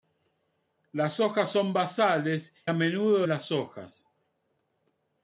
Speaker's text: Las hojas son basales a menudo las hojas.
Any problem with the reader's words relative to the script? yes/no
no